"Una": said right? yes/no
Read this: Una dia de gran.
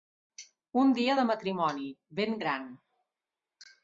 no